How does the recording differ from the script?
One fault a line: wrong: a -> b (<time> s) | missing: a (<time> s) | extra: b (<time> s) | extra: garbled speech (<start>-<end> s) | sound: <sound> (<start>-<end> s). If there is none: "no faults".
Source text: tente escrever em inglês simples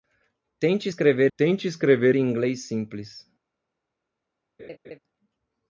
extra: tente escrever (1.4 s)
sound: laugh (4.6-5.0 s)